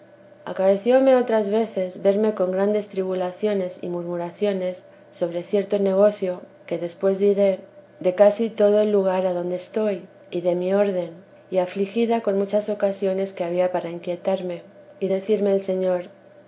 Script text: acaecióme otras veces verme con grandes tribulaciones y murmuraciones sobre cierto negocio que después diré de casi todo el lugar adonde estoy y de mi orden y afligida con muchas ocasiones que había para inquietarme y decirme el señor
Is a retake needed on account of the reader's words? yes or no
no